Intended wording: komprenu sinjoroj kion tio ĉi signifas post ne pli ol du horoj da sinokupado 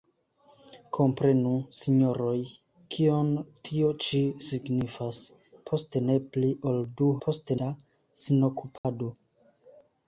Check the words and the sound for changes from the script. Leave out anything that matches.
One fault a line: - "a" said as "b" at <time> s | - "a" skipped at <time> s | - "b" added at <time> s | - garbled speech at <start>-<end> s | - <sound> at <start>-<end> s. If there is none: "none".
- "horoj" said as "post" at 7.3 s
- dropout at 8.8-8.8 s